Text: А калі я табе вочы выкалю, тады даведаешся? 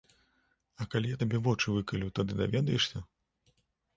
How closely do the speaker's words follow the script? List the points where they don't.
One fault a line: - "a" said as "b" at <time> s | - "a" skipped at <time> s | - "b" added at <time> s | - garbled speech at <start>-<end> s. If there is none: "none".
none